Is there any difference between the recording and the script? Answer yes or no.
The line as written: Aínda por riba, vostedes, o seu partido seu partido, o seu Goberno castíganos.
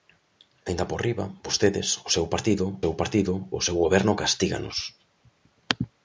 no